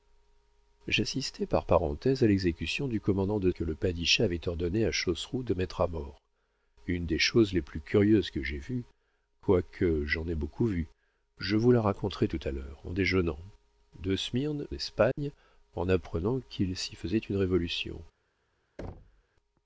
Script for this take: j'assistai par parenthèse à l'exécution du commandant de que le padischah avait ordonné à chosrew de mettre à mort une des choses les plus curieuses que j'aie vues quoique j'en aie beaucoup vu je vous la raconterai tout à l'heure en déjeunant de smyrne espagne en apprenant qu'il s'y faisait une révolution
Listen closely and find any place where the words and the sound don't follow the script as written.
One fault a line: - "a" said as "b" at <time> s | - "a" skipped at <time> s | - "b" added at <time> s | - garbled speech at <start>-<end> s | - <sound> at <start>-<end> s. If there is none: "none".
- dropout at 15.1-15.2 s
- thud at 18.8-19.2 s